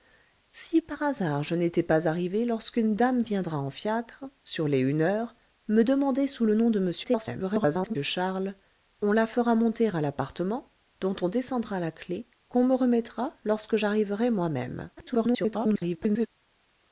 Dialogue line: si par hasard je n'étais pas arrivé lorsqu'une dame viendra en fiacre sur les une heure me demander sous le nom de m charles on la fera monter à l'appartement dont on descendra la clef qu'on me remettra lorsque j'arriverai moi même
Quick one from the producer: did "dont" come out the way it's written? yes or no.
yes